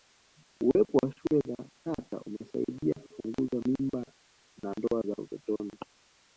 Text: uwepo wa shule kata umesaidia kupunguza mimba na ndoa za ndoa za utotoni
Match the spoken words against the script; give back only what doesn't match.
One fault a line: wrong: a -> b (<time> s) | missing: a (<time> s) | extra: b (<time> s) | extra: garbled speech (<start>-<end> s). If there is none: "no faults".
extra: za (1.5 s)
missing: ndoa za (5.2 s)